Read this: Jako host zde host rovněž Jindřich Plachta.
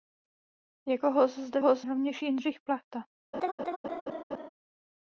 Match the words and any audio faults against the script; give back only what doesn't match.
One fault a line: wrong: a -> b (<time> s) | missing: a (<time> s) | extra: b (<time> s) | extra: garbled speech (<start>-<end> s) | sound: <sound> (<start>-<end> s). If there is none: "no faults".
sound: laugh (3.3-4.5 s)